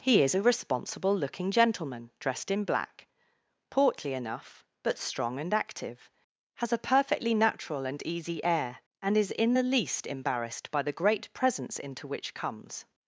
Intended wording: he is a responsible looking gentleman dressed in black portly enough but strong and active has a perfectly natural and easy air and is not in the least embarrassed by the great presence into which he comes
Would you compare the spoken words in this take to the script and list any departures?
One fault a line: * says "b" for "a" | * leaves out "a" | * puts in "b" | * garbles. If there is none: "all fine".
* leaves out "not"
* leaves out "he"